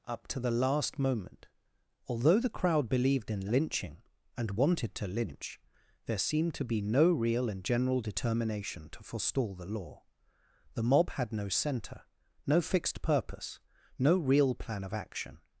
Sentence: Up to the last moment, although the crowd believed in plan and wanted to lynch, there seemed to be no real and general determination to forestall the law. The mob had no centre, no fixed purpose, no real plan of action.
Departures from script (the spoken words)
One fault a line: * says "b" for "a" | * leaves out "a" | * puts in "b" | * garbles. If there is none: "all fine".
* says "lynching" for "plan"